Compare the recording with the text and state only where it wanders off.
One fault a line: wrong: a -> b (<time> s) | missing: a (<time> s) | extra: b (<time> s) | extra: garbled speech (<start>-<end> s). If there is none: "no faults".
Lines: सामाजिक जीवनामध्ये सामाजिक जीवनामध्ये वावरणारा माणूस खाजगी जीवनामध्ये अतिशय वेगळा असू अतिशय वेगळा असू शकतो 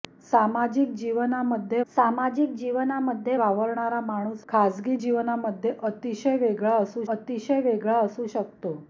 no faults